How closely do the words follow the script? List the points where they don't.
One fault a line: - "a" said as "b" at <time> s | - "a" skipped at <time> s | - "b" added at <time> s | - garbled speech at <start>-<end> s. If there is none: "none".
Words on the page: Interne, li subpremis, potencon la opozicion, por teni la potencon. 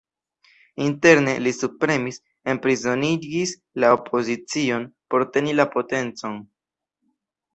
- "potencon" said as "enprizonigis" at 2.5 s